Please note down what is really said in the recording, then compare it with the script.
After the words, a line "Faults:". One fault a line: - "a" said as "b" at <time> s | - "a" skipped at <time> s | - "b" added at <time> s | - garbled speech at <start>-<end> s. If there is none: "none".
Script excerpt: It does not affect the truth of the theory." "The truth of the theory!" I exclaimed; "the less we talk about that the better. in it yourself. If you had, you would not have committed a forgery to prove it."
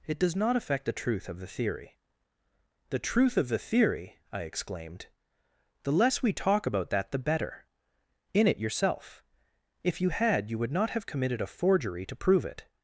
It does not affect the truth of the theory." "The truth of the theory!" I exclaimed; "the less we talk about that the better. in it yourself. If you had, you would not have committed a forgery to prove it."
Faults:
none